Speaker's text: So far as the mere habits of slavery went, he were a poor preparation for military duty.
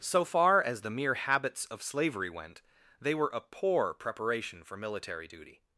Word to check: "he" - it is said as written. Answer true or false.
false